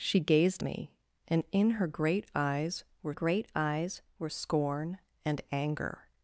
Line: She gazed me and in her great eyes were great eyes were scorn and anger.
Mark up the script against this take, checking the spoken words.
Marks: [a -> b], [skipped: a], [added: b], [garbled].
She gazed me and in her great eyes were great eyes were scorn and anger.